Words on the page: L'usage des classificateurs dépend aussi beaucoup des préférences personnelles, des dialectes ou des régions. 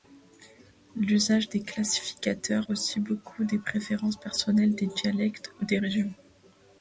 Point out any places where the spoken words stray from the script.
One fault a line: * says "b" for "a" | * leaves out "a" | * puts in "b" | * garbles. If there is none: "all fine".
* leaves out "dépend"